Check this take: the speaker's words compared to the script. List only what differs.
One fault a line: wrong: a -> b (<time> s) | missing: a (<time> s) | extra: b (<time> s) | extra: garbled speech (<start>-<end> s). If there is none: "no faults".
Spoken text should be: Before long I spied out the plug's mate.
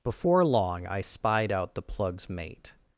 no faults